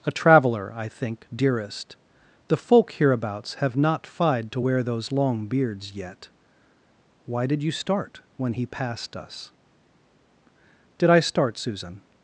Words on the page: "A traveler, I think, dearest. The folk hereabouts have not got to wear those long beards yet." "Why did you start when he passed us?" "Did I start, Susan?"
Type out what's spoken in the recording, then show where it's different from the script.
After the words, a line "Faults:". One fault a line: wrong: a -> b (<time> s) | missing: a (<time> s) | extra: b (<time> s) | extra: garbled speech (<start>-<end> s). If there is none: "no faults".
"A traveler, I think, dearest. The folk hereabouts have not fied to wear those long beards yet." "Why did you start when he passed us?" "Did I start, Susan?"
Faults:
wrong: got -> fied (4.1 s)